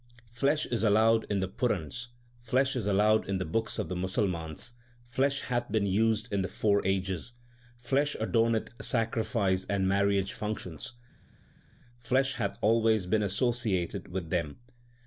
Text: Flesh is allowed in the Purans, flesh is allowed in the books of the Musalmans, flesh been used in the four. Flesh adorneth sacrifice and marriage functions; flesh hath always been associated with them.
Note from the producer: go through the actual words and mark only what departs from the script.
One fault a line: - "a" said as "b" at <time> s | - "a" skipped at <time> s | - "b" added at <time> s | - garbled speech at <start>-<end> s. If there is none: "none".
- "hath" added at 5.4 s
- "ages" added at 6.9 s